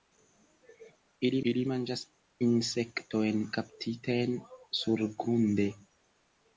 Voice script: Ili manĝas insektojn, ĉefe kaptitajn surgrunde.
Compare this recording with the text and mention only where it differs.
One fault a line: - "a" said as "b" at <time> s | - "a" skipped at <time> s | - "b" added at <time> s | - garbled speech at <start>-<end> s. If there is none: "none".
- "ili" added at 1.5 s
- "ĉefe" skipped at 3.4 s